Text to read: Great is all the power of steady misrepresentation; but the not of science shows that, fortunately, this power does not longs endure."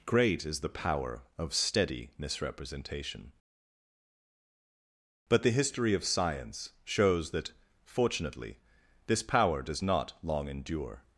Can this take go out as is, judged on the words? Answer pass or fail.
fail